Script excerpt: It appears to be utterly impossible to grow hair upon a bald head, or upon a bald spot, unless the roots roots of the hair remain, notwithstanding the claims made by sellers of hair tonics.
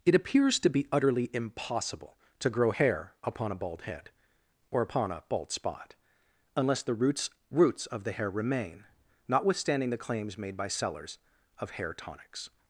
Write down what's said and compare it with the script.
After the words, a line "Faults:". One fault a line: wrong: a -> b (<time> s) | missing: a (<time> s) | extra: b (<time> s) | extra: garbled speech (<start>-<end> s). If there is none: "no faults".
It appears to be utterly impossible to grow hair upon a bald head, or upon a bald spot, unless the roots roots of the hair remain, notwithstanding the claims made by sellers of hair tonics.
Faults:
no faults